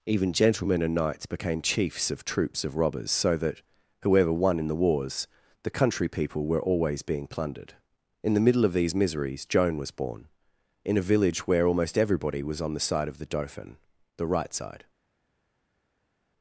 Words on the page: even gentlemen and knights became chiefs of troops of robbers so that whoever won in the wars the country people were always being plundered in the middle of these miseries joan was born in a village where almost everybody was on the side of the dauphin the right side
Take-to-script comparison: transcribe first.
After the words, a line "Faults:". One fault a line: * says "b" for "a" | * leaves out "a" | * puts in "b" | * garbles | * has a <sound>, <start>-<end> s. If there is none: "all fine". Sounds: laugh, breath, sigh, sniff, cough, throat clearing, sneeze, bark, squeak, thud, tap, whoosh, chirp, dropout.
even gentlemen and knights became chiefs of troops of robbers so that whoever won in the wars the country people were always being plundered in the middle of these miseries joan was born in a village where almost everybody was on the side of the dauphin the right side
Faults:
all fine